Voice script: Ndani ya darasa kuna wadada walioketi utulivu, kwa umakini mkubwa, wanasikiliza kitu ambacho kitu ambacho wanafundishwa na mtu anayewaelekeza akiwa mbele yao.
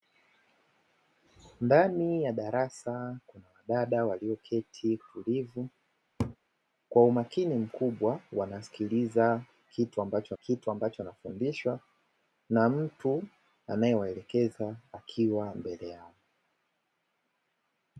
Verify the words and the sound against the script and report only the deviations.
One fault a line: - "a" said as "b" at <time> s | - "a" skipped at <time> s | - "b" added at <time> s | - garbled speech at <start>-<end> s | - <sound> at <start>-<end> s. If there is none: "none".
- laugh at 6.2-6.4 s